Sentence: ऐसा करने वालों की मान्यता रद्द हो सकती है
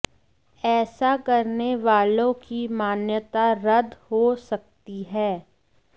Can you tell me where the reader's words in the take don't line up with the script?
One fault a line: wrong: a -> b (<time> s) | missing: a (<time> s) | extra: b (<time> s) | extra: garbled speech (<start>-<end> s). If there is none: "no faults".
no faults